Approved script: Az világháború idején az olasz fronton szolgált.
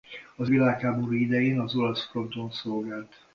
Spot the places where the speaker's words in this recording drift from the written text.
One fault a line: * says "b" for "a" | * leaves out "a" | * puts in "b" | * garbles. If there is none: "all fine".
all fine